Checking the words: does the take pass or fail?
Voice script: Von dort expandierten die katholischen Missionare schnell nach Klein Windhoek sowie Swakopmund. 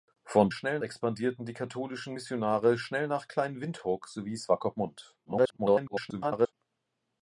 fail